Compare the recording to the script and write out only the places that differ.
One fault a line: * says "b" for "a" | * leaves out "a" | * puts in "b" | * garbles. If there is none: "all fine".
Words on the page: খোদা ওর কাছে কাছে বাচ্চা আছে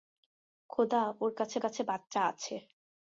all fine